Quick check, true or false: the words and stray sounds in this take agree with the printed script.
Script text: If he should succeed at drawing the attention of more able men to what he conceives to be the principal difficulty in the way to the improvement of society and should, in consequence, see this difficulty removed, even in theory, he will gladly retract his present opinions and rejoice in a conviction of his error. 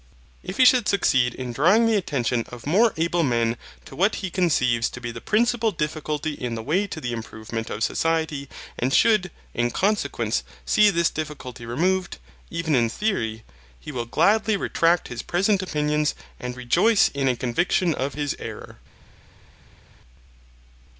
false